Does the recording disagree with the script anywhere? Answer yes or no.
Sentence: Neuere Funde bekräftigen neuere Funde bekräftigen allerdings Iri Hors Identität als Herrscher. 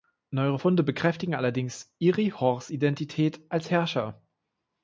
yes